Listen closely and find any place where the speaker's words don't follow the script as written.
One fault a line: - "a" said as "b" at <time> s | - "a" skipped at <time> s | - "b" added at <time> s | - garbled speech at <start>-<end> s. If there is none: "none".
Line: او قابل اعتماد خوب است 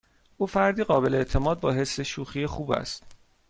- "فردی" added at 0.5 s
- "با حس شوخی" added at 1.6 s